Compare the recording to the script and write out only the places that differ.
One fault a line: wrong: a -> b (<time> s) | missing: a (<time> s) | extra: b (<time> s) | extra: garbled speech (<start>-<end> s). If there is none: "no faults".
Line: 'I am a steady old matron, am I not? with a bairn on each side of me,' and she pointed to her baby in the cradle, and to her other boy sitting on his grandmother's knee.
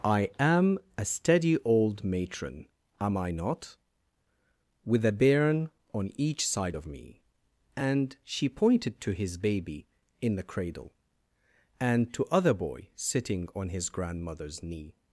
wrong: her -> his (9.1 s)
missing: her (12.2 s)